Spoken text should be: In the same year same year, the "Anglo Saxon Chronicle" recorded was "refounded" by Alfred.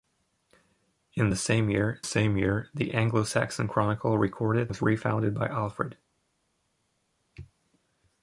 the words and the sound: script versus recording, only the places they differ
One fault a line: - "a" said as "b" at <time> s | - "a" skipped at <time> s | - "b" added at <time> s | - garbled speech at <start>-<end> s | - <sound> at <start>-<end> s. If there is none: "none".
none